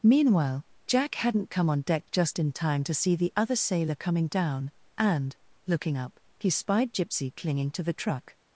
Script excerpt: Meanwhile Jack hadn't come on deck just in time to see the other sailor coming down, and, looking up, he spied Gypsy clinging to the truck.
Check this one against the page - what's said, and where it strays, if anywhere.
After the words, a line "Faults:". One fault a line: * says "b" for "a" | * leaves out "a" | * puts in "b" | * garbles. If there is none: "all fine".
Meanwhile Jack hadn't come on deck just in time to see the other sailor coming down, and, looking up, he spied Gypsy clinging to the truck.
Faults:
all fine